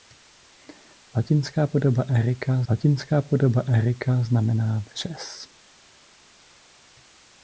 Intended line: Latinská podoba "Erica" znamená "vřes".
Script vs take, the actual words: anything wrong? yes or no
yes